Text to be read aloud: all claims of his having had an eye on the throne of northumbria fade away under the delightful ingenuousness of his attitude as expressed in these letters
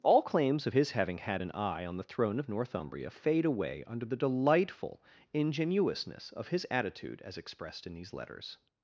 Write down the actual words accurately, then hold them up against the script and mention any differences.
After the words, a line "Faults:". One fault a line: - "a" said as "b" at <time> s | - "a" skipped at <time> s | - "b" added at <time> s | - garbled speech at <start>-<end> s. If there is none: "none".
all claims of his having had an eye on the throne of northumbria fade away under the delightful ingenuousness of his attitude as expressed in these letters
Faults:
none